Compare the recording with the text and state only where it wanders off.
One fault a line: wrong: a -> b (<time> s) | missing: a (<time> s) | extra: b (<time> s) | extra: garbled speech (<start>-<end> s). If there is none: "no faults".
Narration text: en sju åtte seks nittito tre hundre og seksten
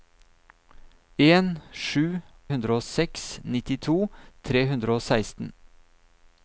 wrong: åtte -> hundre (2.5 s)